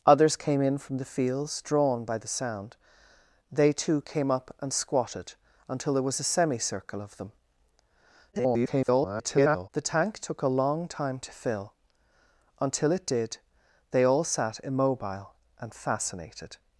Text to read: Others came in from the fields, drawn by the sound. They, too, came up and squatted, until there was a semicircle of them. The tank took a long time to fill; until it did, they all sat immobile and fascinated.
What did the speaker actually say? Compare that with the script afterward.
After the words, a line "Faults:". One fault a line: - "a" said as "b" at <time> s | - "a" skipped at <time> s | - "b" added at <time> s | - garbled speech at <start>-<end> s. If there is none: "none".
Others came in from the fields, drawn by the sound. They, too, came up and squatted, until there was a semicircle of them. [garbled] The tank took a long time to fill; until it did, they all sat immobile and fascinated.
Faults:
- garbled speech at 8.3-9.7 s